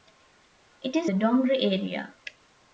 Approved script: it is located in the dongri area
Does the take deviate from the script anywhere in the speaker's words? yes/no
yes